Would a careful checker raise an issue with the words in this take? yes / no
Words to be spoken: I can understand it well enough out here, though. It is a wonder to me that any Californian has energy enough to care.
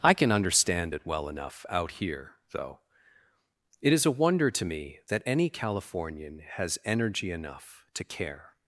no